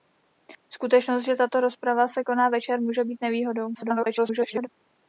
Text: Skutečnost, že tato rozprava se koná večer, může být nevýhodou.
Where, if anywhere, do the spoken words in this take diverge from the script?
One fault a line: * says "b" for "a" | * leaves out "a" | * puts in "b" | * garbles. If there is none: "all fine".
* garbles